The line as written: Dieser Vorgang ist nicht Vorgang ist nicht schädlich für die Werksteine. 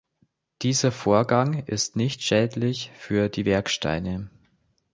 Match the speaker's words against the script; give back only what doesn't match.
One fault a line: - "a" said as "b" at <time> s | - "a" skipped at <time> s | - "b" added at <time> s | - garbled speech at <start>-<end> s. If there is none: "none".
- "Vorgang ist nicht" skipped at 2.2 s